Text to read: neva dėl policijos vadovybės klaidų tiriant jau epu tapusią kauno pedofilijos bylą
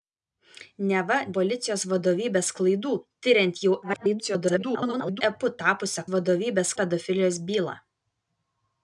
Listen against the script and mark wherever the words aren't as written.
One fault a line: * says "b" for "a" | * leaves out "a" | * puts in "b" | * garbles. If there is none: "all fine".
* leaves out "dėl"
* garbles
* says "vadovybės" for "kauno"